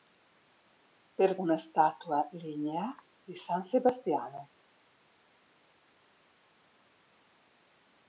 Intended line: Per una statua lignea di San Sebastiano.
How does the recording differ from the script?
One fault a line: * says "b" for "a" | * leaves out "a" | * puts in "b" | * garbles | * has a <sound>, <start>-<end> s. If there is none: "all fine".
all fine